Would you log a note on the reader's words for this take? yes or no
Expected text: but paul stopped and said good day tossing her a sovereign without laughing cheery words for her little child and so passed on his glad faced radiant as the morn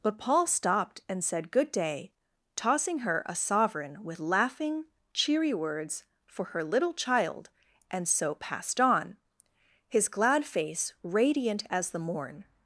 yes